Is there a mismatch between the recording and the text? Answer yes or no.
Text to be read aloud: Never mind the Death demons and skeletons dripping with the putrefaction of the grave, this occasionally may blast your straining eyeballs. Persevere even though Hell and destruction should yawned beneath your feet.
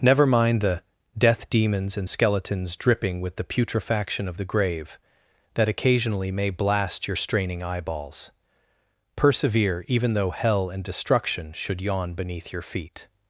yes